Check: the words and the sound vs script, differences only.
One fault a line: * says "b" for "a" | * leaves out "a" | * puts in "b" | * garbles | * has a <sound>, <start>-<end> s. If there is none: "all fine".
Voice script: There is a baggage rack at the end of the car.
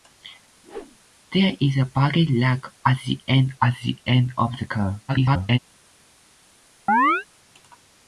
* has a whoosh, 0.6-1.0 s
* puts in "at the end"
* garbles
* has a chirp, 6.9-7.3 s